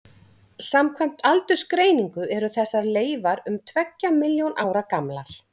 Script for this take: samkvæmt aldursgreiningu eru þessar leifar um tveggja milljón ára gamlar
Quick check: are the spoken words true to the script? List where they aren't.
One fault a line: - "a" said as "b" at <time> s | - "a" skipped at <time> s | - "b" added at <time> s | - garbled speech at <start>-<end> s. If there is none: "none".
none